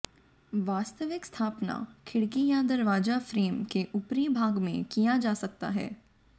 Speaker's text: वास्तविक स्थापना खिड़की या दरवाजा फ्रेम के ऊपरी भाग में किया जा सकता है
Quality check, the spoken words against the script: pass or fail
pass